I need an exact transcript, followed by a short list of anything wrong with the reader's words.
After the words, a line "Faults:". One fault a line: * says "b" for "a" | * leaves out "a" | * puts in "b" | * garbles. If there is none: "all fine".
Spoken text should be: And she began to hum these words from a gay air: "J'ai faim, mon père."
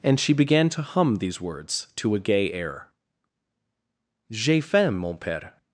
And she began to hum these words to a gay air: "J'ai faim, mon père."
Faults:
* says "to" for "from"